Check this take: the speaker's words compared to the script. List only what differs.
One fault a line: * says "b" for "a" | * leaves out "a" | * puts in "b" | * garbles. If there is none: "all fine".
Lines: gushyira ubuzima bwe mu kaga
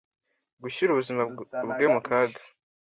all fine